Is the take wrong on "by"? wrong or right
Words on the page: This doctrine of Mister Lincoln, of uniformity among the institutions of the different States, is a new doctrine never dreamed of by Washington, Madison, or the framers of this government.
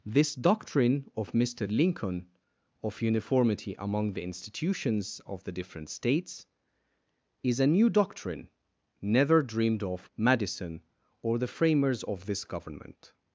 wrong